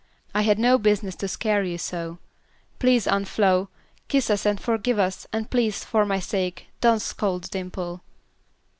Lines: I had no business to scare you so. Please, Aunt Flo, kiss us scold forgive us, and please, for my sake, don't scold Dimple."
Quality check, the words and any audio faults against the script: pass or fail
fail